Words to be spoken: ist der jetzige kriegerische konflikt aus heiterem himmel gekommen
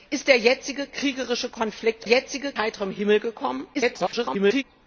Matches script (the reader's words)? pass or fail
fail